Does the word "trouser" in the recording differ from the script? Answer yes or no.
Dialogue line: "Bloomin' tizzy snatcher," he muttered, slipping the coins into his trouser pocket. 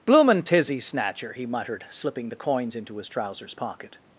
yes